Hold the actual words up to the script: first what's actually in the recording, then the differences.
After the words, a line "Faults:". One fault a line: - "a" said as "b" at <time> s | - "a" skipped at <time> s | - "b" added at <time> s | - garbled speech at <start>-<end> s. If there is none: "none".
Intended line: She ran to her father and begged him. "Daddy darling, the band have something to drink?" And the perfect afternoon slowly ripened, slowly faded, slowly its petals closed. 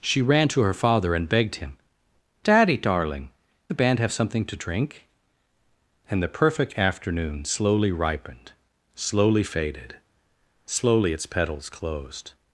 She ran to her father and begged him. "Daddy darling, the band have something to drink?" And the perfect afternoon slowly ripened, slowly faded, slowly its petals closed.
Faults:
none